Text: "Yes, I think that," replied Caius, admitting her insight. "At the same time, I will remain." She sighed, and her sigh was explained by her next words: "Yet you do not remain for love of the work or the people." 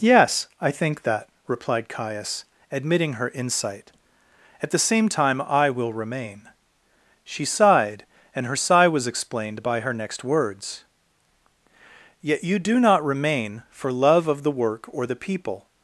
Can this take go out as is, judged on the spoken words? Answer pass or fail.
pass